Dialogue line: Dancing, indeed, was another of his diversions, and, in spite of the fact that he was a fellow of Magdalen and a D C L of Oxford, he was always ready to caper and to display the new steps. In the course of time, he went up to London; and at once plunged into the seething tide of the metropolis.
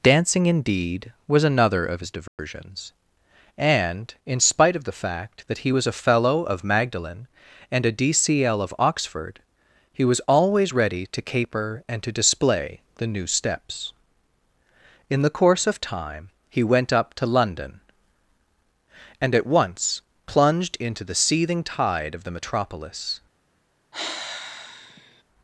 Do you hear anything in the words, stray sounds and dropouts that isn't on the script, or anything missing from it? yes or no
yes